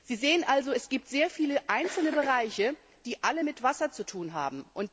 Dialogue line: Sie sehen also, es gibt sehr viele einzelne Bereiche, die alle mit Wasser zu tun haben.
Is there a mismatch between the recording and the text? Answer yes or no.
no